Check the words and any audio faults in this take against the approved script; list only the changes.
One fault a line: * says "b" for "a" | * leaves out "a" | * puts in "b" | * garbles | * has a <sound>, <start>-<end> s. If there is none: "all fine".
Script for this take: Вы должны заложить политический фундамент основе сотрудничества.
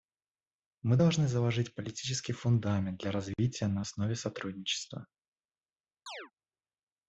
* says "Мы" for "Вы"
* puts in "для развития на"
* has a chirp, 6.1-6.3 s